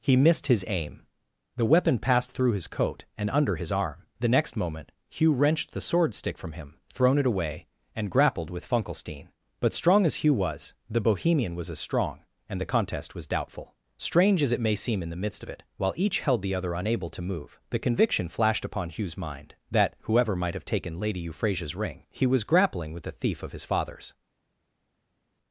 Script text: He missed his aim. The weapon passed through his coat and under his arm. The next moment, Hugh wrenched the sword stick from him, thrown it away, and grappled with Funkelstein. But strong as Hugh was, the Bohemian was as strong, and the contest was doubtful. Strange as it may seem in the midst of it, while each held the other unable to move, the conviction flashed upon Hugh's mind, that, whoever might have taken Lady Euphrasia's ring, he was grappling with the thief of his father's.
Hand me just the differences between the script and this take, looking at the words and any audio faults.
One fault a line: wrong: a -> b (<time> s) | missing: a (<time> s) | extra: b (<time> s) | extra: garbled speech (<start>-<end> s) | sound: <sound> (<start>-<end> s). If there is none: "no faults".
no faults